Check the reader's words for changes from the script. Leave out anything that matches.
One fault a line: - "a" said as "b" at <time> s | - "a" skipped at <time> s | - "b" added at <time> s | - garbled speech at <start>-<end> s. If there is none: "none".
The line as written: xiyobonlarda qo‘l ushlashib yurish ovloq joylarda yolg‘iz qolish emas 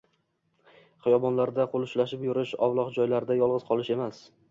none